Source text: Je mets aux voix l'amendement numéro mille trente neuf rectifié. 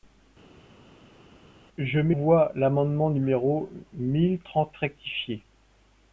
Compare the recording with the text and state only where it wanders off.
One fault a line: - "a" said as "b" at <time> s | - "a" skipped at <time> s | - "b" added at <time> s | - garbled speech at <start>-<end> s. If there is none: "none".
- "aux" skipped at 2.2 s
- "neuf" skipped at 4.8 s